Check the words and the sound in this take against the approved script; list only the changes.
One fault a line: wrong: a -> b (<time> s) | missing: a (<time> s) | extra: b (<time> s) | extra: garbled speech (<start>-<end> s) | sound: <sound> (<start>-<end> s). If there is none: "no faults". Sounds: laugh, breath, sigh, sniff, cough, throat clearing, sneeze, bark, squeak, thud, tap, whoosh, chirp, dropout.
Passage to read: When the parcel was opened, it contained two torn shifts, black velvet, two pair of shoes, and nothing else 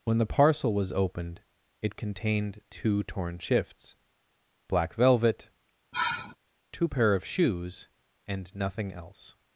sound: sigh (5.9-6.4 s)